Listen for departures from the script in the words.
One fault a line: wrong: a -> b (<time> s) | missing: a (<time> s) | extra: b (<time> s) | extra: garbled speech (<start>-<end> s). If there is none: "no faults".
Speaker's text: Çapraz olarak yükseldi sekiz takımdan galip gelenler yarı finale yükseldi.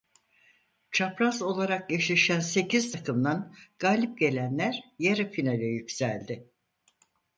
wrong: yükseldi -> eşleşen (1.9 s)